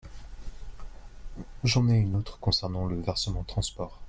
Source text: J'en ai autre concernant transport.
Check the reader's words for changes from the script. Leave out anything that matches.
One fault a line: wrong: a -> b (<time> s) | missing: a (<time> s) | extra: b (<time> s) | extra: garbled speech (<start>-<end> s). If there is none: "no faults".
extra: une (2.0 s)
extra: le versement (2.9 s)